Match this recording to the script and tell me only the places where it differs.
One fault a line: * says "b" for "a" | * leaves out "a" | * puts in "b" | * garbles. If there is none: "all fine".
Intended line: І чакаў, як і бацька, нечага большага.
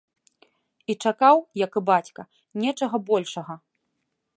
all fine